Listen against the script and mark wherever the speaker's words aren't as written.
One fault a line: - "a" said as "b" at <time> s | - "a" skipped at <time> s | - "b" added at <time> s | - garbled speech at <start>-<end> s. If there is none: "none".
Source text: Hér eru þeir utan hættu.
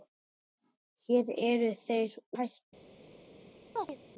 - "utan" skipped at 2.2 s